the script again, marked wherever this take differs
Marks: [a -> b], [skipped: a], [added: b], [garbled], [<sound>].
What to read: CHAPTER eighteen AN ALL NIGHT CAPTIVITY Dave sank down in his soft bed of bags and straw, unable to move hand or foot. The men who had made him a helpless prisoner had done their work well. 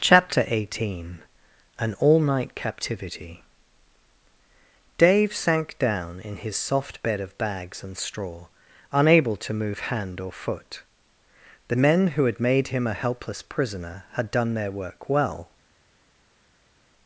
CHAPTER eighteen AN ALL NIGHT CAPTIVITY Dave sank down in his soft bed of bags and straw, unable to move hand or foot. The men who had made him a helpless prisoner had done their work well.